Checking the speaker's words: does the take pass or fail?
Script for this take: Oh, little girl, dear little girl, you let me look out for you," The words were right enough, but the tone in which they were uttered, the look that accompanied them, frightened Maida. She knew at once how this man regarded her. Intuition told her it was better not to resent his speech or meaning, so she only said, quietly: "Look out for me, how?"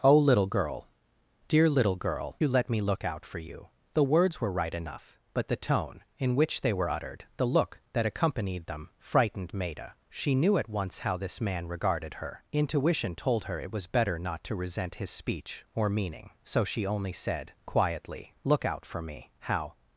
pass